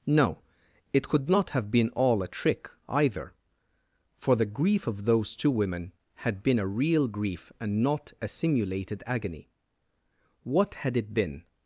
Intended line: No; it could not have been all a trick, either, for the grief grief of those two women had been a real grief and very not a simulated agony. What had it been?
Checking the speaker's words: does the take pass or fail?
fail